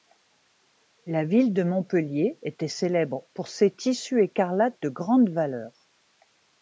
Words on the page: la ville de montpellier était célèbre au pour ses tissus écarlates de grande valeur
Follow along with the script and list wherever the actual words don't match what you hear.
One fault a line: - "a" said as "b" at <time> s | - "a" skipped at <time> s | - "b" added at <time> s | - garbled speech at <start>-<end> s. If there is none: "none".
- "au" skipped at 3.2 s